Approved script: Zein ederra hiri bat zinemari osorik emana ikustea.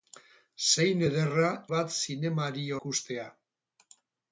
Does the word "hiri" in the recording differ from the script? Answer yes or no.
yes